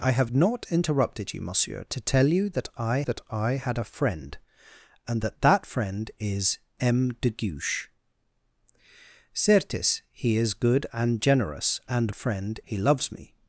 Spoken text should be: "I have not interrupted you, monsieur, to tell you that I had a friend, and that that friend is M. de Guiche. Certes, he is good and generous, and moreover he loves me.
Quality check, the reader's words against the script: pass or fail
fail